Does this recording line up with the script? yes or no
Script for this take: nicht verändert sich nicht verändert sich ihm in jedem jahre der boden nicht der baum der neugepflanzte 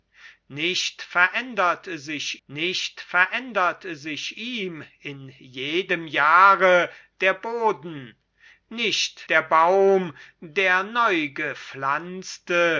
yes